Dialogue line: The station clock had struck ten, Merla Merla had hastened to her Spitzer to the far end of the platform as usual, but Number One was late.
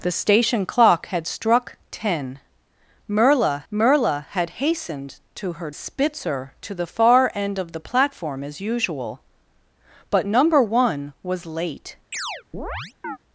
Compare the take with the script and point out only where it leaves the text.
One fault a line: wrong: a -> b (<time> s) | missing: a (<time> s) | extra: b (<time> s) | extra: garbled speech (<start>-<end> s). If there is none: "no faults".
no faults